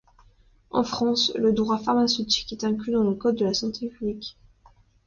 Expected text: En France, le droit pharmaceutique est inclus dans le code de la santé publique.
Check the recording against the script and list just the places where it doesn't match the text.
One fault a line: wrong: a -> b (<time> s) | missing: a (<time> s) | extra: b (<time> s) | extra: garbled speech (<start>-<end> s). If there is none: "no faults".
no faults